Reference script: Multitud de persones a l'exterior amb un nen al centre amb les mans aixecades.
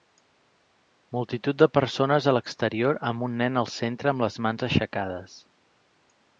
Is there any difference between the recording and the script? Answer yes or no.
no